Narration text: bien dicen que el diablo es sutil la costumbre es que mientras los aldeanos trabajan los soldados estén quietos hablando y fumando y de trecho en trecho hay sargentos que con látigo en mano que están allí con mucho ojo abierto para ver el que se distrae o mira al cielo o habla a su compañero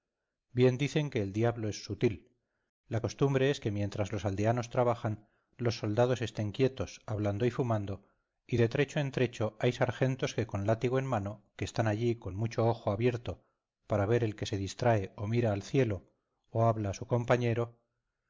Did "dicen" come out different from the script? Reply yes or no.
no